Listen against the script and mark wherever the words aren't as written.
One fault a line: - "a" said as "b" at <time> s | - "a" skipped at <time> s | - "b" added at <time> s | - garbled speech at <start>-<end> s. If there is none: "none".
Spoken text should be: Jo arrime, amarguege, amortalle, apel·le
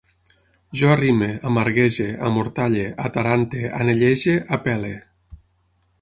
- "atarante anellege" added at 3.1 s